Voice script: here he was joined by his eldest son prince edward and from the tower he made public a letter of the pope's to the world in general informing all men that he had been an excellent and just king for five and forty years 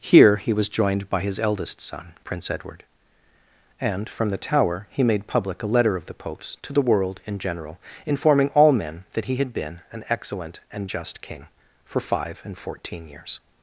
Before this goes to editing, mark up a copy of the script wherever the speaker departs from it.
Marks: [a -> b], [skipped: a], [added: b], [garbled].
here he was joined by his eldest son prince edward and from the tower he made public a letter of the pope's to the world in general informing all men that he had been an excellent and just king for five and [forty -> fourteen] years